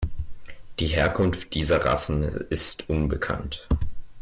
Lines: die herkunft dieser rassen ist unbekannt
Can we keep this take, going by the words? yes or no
yes